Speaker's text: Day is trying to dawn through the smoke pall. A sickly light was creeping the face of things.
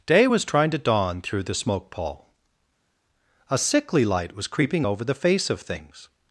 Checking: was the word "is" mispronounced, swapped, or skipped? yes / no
yes